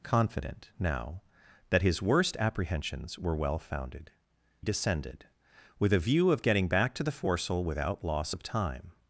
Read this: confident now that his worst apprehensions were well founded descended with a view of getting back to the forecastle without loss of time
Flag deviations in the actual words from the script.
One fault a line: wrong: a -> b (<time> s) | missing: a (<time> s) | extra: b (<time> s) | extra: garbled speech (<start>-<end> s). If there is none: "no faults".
no faults